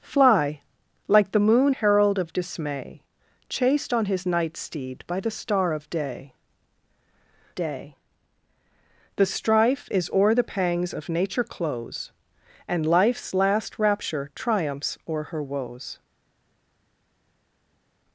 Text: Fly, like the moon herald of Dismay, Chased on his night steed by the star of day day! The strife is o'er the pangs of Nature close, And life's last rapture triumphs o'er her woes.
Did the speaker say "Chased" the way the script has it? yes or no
yes